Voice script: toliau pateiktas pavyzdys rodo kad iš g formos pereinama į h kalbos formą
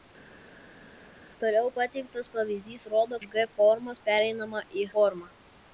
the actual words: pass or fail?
fail